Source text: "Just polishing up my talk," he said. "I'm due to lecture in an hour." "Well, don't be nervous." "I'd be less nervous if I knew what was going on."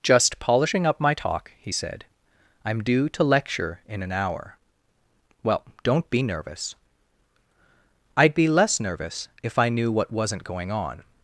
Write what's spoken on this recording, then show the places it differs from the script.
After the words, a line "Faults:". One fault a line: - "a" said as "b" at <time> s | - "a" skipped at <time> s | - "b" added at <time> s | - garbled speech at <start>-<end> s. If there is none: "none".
"Just polishing up my talk," he said. "I'm due to lecture in an hour." "Well, don't be nervous." "I'd be less nervous if I knew what wasn't going on."
Faults:
- "was" said as "wasn't" at 10.1 s